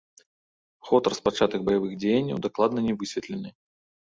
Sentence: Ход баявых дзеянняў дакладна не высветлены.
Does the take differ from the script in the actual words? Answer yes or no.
yes